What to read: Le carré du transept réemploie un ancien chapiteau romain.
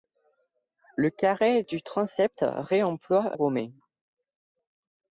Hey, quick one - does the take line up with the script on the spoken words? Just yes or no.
no